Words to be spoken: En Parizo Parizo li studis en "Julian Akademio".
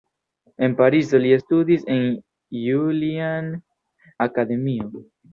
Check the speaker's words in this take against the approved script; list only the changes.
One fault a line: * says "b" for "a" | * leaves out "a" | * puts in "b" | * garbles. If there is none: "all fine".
* leaves out "Parizo"